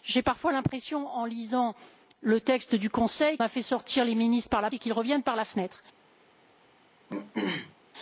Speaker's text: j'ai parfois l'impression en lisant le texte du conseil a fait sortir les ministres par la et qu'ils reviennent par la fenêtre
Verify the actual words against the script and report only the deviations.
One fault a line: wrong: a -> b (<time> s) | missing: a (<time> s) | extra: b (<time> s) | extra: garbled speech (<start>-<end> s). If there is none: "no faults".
no faults